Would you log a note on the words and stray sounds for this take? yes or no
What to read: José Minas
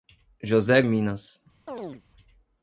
yes